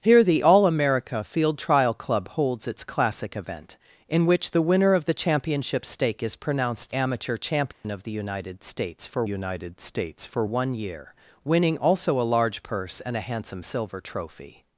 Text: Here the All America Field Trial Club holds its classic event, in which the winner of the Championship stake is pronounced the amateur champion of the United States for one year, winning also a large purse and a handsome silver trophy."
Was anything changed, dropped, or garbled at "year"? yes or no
no